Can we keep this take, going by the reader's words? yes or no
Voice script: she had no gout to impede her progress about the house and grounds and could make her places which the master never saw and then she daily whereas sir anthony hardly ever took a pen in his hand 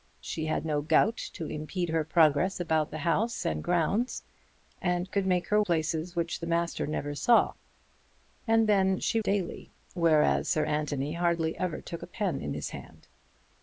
yes